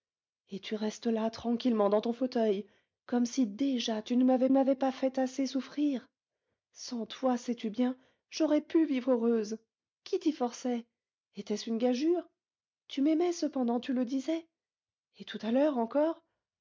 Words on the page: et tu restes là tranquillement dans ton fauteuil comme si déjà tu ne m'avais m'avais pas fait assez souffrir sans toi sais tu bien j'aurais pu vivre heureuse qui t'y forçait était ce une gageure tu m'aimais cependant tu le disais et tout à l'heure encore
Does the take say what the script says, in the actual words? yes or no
yes